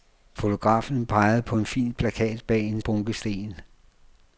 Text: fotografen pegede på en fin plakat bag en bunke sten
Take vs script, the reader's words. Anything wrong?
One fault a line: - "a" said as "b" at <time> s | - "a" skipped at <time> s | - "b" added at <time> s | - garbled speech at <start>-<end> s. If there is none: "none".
none